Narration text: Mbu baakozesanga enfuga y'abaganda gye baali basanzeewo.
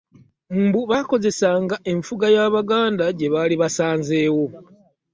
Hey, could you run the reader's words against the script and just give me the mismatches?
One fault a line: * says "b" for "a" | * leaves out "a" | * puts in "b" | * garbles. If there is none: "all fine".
all fine